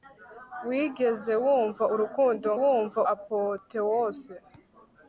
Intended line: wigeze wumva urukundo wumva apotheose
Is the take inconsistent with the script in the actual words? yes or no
no